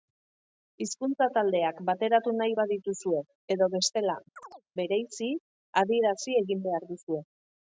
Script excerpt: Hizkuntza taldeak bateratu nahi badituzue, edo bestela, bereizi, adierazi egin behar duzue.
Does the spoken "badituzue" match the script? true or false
true